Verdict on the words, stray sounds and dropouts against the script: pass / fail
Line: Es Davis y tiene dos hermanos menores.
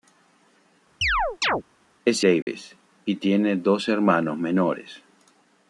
fail